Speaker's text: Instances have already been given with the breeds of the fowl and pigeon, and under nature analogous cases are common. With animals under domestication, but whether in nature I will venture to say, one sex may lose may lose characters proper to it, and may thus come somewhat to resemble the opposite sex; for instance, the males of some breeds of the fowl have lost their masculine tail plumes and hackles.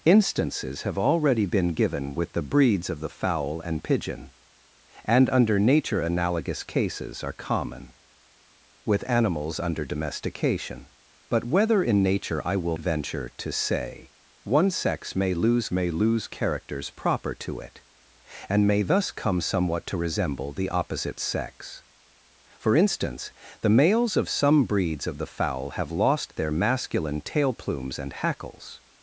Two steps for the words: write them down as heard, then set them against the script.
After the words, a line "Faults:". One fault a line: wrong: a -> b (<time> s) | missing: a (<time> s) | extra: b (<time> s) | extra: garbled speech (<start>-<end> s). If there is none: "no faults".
Instances have already been given with the breeds of the fowl and pigeon, and under nature analogous cases are common. With animals under domestication, but whether in nature I will venture to say, one sex may lose may lose characters proper to it, and may thus come somewhat to resemble the opposite sex; for instance, the males of some breeds of the fowl have lost their masculine tail plumes and hackles.
Faults:
no faults